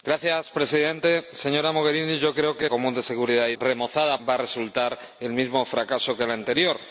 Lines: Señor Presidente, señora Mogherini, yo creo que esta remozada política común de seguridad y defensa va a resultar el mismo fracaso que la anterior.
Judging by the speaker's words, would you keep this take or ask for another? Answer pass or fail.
fail